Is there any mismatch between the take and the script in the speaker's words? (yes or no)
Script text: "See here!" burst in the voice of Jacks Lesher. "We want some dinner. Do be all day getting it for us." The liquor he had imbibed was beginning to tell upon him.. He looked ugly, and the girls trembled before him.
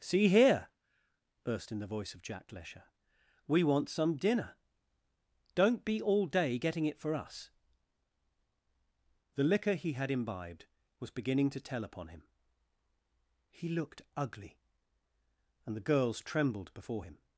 yes